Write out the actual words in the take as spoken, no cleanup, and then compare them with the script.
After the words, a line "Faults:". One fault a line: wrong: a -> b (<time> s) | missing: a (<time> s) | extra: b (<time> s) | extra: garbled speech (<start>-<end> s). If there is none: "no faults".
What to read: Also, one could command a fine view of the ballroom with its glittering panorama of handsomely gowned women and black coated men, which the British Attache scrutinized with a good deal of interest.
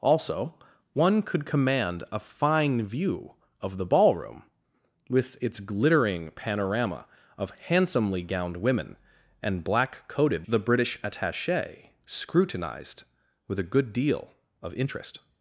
Also, one could command a fine view of the ballroom with its glittering panorama of handsomely gowned women and black coated the British Attache scrutinized with a good deal of interest.
Faults:
missing: men which (10.5 s)